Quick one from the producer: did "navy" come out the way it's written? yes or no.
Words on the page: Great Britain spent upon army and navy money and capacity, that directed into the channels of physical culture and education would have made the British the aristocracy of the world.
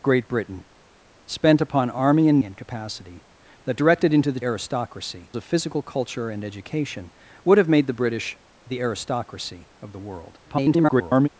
no